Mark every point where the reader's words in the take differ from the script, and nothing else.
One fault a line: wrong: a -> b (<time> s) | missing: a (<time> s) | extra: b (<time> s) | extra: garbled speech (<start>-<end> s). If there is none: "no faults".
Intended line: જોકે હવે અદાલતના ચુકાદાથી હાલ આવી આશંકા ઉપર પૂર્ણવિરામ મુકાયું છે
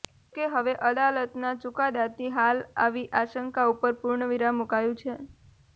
no faults